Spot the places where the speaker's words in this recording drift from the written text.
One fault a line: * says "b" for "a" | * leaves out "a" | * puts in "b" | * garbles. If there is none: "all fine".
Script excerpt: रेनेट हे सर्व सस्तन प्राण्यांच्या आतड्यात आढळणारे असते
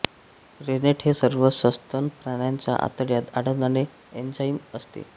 * puts in "एन्झाइम"